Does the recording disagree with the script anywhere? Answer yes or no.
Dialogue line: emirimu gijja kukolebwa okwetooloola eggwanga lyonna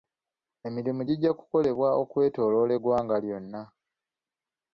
no